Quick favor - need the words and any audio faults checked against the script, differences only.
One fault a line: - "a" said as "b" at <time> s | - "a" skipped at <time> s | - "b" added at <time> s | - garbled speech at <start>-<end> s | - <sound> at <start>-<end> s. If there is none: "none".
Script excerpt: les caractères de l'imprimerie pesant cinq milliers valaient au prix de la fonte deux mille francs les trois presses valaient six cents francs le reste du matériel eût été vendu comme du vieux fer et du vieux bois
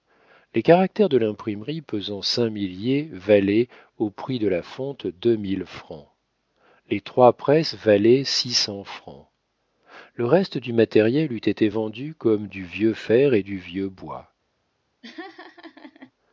- laugh at 15.0-16.1 s